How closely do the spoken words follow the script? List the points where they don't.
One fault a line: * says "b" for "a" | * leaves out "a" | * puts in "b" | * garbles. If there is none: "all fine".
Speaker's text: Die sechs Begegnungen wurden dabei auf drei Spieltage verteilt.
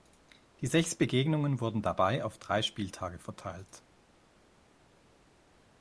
all fine